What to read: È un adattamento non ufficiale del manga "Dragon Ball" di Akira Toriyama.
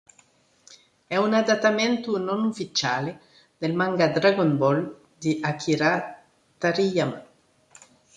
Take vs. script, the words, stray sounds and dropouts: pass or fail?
pass